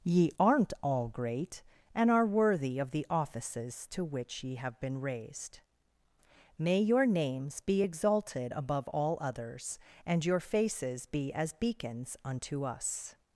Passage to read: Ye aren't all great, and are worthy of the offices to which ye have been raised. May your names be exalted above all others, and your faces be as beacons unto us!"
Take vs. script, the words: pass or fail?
pass